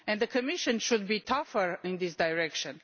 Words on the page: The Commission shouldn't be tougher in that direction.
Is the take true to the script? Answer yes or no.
no